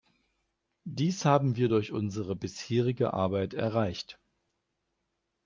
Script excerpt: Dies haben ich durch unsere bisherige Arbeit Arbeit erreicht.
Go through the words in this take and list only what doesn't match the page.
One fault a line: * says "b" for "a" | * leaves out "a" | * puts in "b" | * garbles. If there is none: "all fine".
* says "wir" for "ich"
* leaves out "Arbeit"